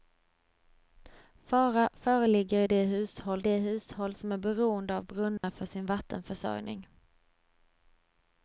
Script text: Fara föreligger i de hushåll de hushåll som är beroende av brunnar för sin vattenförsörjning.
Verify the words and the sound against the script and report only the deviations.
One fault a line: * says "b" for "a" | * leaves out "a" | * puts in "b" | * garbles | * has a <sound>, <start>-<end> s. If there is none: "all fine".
* has a dropout, 5.4-5.4 s